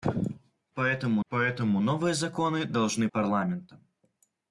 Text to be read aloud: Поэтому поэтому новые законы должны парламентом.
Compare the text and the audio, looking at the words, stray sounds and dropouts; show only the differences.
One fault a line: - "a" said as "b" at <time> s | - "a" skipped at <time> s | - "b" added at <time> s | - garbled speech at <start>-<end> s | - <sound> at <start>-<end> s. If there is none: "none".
none